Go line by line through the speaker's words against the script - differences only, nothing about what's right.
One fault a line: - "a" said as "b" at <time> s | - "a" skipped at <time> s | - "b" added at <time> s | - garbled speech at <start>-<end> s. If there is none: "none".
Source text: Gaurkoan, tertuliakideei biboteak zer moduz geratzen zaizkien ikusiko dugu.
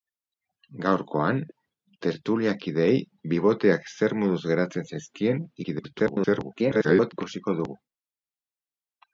- garbled speech at 5.6-7.1 s